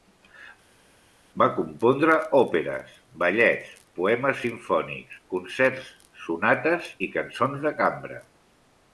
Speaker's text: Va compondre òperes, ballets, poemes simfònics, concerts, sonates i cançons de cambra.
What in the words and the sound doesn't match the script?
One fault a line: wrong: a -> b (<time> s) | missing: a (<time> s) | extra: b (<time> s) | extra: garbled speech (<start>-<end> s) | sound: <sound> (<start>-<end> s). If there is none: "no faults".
no faults